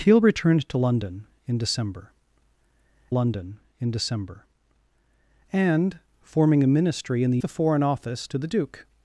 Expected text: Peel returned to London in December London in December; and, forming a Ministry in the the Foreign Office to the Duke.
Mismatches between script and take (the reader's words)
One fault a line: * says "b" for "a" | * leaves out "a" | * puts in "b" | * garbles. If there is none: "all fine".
all fine